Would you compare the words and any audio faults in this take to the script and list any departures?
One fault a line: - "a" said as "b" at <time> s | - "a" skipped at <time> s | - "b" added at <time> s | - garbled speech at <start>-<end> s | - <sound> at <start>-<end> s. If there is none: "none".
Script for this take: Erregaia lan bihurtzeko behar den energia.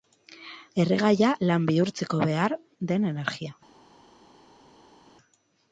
none